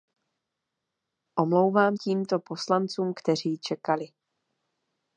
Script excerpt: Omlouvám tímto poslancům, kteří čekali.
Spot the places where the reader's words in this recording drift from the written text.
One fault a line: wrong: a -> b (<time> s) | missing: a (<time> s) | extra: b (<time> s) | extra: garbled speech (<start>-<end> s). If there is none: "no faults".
no faults